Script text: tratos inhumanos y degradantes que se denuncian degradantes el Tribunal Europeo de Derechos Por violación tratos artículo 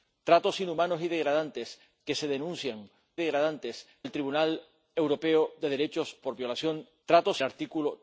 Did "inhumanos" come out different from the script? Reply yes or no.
no